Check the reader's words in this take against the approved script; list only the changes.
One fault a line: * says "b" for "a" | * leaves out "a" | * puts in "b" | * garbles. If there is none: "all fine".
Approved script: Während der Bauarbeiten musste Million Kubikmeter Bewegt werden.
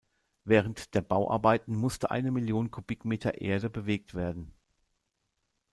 * puts in "eine"
* puts in "Erde"